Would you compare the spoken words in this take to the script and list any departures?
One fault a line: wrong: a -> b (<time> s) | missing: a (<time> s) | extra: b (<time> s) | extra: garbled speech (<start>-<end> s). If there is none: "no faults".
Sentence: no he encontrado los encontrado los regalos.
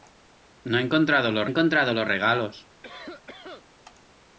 no faults